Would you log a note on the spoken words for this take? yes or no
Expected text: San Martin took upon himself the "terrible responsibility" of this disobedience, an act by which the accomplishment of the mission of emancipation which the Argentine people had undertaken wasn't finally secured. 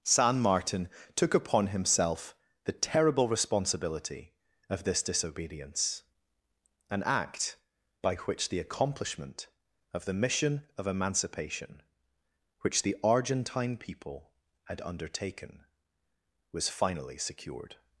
yes